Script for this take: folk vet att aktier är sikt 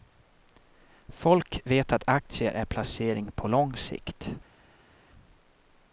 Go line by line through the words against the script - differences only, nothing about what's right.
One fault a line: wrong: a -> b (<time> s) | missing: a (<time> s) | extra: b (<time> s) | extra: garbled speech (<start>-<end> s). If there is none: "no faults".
extra: placering på lång (2.6 s)